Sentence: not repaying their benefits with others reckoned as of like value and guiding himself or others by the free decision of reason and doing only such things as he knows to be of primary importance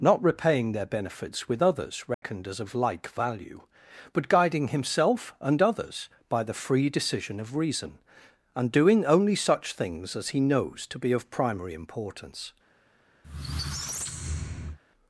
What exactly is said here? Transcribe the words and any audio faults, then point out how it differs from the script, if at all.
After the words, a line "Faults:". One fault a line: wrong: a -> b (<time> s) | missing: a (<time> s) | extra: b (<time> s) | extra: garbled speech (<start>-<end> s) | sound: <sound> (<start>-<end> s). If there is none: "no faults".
not repaying their benefits with others reckoned as of like value but guiding himself and others by the free decision of reason and doing only such things as he knows to be of primary importance
Faults:
sound: dropout (2.1-2.2 s)
wrong: and -> but (4.1 s)
wrong: or -> and (5.4 s)
sound: squeak (13.2-14.8 s)